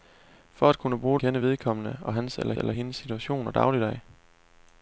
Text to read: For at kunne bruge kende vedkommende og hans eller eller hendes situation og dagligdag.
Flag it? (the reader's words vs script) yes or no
no